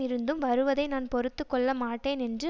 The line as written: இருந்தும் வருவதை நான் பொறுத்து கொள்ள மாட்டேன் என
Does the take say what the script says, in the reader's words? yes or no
no